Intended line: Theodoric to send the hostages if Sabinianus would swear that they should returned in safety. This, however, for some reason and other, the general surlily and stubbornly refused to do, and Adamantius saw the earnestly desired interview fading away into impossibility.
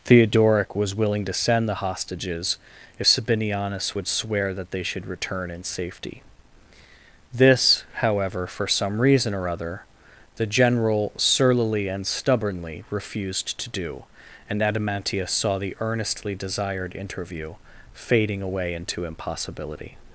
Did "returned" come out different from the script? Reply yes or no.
yes